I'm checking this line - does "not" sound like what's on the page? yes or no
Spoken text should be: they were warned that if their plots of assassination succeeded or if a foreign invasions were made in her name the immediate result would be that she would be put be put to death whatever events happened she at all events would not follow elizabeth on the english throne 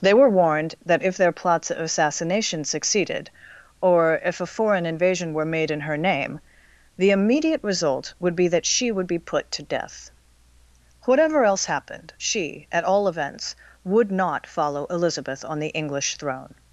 yes